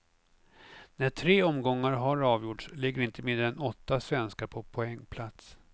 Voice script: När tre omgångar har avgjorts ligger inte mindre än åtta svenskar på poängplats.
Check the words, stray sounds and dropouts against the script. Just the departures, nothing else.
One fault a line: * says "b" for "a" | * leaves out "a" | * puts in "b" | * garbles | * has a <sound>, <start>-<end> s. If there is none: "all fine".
all fine